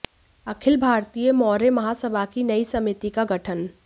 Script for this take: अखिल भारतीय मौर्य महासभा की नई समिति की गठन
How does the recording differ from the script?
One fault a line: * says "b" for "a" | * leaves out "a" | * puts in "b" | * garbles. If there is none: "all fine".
* says "का" for "की"